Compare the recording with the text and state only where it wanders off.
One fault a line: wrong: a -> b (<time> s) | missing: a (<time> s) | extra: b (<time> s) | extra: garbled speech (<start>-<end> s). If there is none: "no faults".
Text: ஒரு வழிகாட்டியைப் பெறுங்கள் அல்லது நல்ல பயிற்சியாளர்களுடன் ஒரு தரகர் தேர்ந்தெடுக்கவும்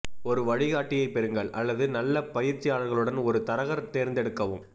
no faults